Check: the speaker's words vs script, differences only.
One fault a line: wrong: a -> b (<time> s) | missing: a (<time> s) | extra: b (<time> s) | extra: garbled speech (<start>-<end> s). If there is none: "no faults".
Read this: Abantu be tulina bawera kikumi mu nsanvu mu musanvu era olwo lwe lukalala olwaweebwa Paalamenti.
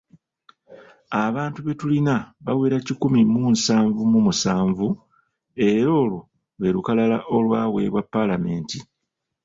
no faults